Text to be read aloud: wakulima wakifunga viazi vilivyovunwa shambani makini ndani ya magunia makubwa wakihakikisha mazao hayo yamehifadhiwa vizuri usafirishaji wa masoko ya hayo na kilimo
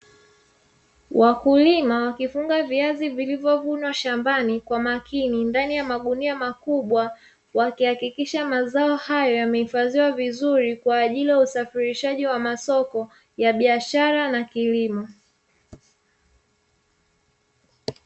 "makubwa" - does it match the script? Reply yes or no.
yes